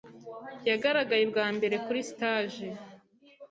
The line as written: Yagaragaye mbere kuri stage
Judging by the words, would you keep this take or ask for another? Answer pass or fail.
fail